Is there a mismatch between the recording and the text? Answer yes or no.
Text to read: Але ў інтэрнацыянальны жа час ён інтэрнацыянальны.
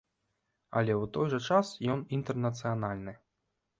yes